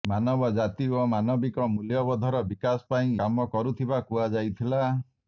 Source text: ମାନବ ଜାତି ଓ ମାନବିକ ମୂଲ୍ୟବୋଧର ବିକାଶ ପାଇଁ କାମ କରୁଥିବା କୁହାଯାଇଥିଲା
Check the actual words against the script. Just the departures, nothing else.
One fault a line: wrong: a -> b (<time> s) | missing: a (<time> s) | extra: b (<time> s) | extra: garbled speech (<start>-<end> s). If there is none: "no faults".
no faults